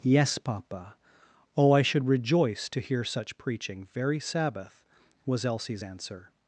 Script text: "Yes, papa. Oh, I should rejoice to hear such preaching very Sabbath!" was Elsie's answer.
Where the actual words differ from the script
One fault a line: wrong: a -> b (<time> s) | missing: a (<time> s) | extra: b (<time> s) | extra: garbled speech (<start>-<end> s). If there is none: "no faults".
no faults